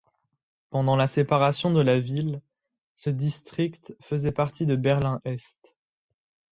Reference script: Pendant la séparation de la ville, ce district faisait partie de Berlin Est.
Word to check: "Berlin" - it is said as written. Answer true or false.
true